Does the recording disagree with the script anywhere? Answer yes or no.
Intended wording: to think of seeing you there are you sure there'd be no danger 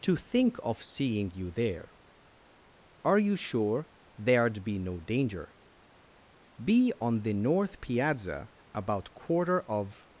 yes